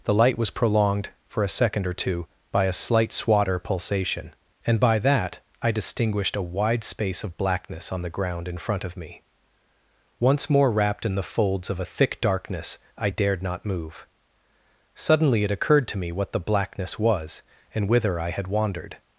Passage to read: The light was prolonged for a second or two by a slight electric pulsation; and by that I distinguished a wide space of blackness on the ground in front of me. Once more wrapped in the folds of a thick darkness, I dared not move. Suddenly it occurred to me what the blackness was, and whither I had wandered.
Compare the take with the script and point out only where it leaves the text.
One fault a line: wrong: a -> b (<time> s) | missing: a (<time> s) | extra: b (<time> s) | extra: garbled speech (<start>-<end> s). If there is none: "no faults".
wrong: electric -> swatter (3.1 s)